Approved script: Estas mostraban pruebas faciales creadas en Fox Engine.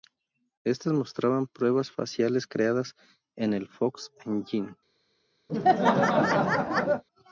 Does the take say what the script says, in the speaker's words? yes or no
no